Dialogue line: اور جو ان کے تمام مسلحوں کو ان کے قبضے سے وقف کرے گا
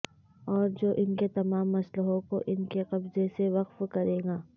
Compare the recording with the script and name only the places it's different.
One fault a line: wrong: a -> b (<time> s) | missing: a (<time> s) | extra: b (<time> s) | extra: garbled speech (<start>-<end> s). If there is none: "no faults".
no faults